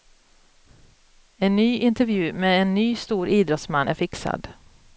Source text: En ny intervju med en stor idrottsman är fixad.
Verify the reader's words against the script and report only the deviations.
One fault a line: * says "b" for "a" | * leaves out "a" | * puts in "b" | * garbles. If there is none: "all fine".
* puts in "ny"